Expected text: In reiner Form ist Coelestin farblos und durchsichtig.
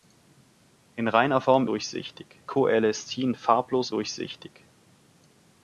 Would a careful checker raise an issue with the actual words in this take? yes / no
yes